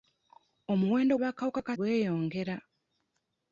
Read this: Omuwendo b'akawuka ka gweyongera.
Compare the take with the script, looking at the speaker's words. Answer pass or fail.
pass